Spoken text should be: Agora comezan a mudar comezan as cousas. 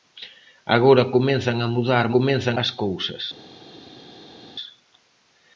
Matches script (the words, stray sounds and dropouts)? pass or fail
pass